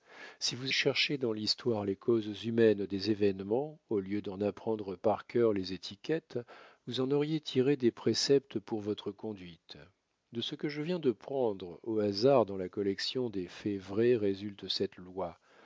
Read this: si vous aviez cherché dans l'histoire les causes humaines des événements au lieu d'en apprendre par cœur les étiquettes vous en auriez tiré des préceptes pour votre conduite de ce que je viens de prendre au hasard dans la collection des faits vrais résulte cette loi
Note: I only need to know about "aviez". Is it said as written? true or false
false